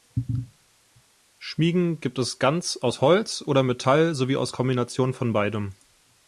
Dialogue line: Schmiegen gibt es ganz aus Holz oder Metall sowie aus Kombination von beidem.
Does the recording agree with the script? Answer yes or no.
yes